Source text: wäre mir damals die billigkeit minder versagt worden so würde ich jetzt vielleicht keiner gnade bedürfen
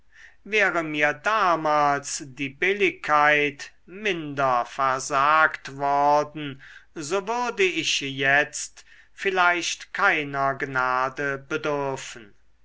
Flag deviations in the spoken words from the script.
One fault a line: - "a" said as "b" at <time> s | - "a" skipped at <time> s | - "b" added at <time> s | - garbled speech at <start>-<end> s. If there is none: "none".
none